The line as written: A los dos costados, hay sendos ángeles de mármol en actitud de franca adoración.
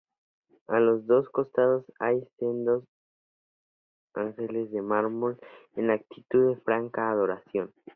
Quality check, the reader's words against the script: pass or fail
pass